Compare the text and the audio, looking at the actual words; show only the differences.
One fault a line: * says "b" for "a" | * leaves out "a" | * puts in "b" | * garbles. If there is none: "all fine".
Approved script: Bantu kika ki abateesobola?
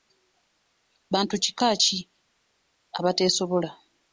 all fine